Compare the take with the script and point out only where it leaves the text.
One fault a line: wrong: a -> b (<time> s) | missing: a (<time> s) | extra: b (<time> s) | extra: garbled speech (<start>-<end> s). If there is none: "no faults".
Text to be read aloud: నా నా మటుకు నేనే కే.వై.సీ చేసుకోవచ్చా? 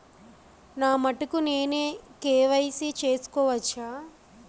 missing: నా (0.9 s)